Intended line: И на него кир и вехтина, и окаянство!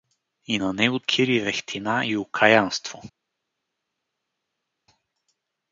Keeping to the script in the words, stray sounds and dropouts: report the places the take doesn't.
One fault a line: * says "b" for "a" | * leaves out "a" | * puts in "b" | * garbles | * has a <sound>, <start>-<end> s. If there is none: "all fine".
all fine